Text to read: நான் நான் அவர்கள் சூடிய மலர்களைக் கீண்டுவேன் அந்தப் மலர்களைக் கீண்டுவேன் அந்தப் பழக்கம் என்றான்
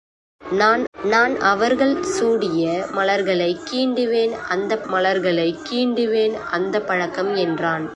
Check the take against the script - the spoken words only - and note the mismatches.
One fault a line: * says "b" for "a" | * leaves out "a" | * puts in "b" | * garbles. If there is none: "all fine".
all fine